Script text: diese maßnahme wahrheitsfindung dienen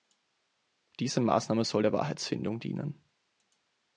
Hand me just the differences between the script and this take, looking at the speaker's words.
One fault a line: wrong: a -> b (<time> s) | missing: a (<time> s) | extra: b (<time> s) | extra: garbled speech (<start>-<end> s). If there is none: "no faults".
extra: soll der (1.6 s)